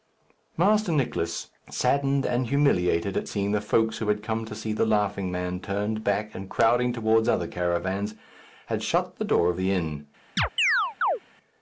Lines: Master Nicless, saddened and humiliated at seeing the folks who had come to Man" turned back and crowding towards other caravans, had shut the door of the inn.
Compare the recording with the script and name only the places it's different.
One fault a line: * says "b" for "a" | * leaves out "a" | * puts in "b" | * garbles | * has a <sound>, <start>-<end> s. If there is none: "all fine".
* puts in "see The Laughing"
* has a chirp, 10.4-11.2 s